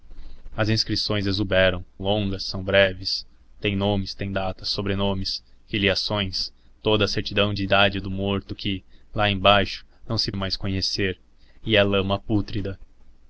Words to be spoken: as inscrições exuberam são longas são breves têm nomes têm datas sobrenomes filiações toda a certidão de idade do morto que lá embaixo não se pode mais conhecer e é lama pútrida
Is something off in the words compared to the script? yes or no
yes